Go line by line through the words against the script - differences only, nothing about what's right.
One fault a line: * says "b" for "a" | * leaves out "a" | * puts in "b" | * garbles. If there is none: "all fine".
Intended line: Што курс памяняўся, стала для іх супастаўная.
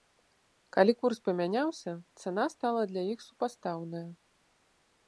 * says "Калі" for "Што"
* puts in "цана"